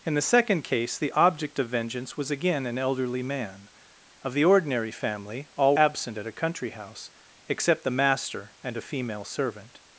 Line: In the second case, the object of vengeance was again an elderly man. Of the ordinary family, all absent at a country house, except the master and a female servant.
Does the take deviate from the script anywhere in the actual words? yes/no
no